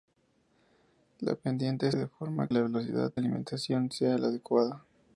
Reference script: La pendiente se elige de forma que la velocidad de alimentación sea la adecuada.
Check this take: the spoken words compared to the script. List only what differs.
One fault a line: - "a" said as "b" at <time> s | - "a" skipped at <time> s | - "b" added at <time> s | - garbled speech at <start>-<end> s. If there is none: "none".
- "se elige" skipped at 1.9 s
- "que" skipped at 2.5 s
- "de" skipped at 3.1 s